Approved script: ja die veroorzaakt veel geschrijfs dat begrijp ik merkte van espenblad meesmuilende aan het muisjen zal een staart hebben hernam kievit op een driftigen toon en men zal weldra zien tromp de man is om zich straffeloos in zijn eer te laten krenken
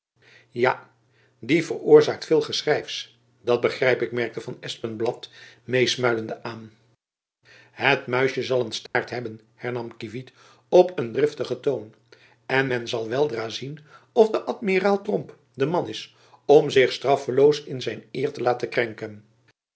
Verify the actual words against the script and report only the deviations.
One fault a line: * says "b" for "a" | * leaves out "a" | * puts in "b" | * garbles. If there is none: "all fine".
* puts in "of de amiraal"